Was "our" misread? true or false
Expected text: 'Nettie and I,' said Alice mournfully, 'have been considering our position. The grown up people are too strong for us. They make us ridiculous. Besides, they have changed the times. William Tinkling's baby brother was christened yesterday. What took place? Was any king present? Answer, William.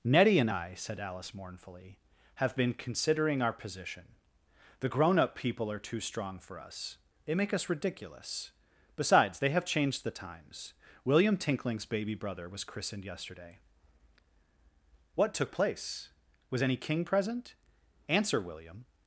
false